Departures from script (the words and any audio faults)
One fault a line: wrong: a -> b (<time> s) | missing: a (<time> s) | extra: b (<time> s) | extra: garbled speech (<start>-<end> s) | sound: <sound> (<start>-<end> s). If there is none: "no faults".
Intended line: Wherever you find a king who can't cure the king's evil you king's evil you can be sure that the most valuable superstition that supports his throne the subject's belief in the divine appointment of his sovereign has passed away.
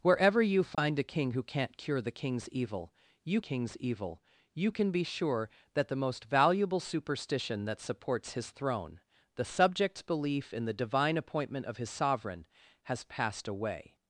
sound: dropout (0.7-0.8 s)